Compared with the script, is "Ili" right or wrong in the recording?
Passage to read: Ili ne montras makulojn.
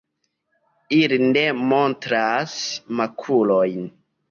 right